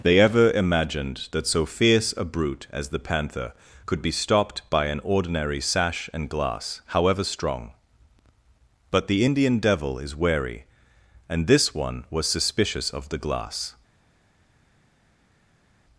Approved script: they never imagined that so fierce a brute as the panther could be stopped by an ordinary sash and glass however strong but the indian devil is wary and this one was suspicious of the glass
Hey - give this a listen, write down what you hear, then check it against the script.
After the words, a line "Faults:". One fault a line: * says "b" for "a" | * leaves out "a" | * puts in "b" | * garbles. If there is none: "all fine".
they ever imagined that so fierce a brute as the panther could be stopped by an ordinary sash and glass however strong but the indian devil is wary and this one was suspicious of the glass
Faults:
* says "ever" for "never"